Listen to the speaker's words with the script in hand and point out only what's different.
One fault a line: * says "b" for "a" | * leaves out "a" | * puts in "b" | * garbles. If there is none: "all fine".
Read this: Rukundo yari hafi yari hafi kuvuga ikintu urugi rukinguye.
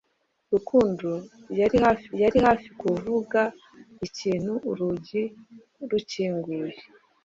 all fine